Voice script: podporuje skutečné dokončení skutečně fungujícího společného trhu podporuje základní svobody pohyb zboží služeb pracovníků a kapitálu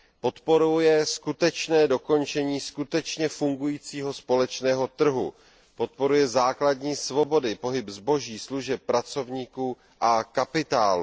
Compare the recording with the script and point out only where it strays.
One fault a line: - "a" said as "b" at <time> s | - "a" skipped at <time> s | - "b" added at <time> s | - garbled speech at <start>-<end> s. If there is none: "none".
none